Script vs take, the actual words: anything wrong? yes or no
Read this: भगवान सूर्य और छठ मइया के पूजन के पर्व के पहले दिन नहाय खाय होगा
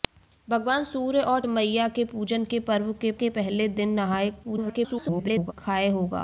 yes